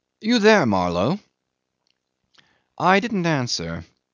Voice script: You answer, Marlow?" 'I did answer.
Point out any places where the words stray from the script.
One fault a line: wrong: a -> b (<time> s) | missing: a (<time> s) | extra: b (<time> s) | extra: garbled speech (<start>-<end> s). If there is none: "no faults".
wrong: answer -> there (0.4 s)
wrong: did -> didn't (3.0 s)